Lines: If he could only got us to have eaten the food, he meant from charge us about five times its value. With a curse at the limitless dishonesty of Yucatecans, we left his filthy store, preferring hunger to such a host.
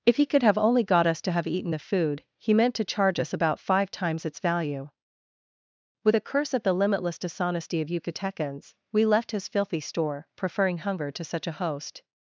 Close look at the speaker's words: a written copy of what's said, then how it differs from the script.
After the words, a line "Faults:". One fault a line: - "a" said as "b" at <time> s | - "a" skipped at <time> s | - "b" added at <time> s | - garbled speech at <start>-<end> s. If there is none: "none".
If he could have only got us to have eaten the food, he meant to charge us about five times its value. With a curse at the limitless dishonesty of Yucatecans, we left his filthy store, preferring hunger to such a host.
Faults:
- "have" added at 0.4 s
- "from" said as "to" at 2.8 s